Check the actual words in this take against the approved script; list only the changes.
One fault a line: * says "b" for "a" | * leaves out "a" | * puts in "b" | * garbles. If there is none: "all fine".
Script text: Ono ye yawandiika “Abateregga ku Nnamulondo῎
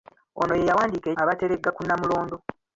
all fine